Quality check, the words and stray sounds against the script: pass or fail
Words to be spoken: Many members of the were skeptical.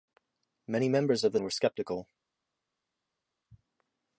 pass